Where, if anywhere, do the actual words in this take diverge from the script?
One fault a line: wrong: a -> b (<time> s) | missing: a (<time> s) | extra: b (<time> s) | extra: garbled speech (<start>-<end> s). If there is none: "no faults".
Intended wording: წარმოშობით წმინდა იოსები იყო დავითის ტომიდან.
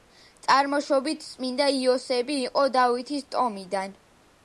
no faults